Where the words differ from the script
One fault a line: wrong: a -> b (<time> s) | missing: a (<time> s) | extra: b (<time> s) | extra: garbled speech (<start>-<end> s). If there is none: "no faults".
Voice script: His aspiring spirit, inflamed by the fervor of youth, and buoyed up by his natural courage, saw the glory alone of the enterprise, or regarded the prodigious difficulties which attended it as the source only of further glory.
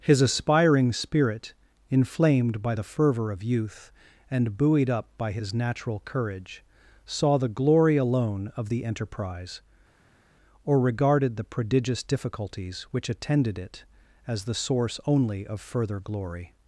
no faults